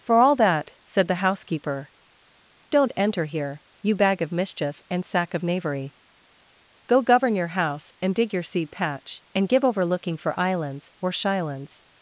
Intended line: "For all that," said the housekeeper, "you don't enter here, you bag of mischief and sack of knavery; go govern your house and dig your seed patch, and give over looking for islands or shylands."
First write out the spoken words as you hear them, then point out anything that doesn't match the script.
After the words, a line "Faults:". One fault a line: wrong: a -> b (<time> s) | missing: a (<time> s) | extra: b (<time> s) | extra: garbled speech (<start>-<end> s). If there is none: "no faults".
"For all that," said the housekeeper, "don't enter here, you bag of mischief and sack of knavery; go govern your house and dig your seed patch, and give over looking for islands or shylands."
Faults:
missing: you (1.9 s)